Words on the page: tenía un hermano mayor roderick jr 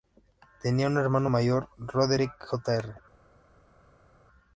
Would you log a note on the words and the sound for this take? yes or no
no